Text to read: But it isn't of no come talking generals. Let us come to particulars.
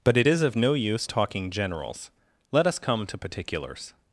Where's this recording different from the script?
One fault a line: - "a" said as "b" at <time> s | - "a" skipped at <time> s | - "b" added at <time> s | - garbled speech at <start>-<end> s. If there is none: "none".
- "isn't" said as "is" at 0.2 s
- "come" said as "use" at 0.7 s